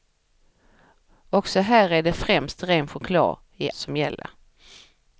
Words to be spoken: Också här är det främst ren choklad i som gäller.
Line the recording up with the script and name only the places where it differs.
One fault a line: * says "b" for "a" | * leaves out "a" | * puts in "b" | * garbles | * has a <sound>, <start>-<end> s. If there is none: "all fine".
all fine